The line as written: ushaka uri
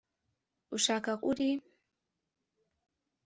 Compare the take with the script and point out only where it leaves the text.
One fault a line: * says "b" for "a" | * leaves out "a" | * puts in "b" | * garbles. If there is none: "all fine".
all fine